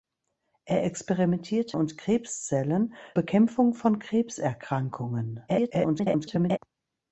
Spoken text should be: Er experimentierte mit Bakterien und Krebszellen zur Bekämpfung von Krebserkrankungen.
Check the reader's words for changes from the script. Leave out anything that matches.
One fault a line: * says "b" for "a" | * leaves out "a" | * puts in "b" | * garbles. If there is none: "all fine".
* leaves out "mit Bakterien"
* leaves out "zur"
* garbles